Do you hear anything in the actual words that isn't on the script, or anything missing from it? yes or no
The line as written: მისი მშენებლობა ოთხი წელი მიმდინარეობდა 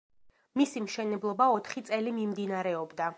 no